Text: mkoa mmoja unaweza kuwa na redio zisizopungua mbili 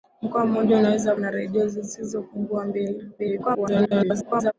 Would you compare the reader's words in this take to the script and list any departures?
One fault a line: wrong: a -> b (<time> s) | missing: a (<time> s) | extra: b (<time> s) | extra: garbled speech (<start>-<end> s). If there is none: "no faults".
missing: kuwa (1.1 s)
extra: garbled speech (3.2-4.5 s)